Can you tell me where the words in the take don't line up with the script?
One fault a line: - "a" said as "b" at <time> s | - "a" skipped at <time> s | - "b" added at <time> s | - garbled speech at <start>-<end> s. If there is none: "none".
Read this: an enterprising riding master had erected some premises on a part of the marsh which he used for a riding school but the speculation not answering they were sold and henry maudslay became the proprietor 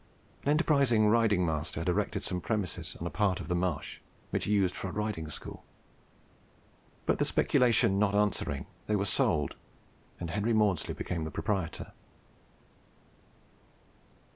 none